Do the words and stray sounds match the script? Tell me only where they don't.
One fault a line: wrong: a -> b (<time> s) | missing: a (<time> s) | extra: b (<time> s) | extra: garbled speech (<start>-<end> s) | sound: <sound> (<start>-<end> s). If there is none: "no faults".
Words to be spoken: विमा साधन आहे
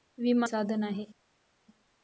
no faults